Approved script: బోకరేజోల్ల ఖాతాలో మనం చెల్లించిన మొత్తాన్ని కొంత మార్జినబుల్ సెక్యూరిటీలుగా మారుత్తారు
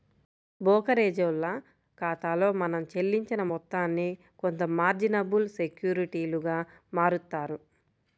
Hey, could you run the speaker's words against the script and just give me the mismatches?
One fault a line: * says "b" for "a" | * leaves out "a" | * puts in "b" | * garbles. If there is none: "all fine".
all fine